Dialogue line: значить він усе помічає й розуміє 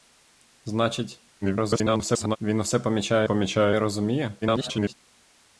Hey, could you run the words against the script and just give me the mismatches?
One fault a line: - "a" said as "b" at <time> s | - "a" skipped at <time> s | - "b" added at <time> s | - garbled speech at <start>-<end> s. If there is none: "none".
- garbled speech at 1.4-2.4 s
- "помічає" added at 3.2 s
- garbled speech at 4.4-4.9 s